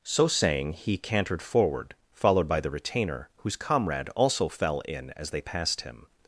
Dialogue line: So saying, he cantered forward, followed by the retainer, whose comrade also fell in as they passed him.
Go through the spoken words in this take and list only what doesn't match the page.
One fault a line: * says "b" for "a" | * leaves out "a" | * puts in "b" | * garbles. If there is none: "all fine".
all fine